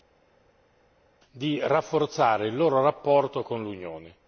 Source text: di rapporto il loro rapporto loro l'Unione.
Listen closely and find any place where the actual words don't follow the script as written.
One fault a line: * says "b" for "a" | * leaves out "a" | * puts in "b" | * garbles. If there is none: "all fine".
* says "rafforzare" for "rapporto"
* says "con" for "loro"